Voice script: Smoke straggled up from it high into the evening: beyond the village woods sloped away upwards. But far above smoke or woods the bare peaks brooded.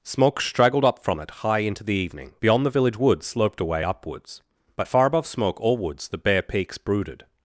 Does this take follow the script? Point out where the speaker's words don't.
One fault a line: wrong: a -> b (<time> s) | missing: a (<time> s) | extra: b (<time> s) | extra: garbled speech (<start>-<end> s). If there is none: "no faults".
no faults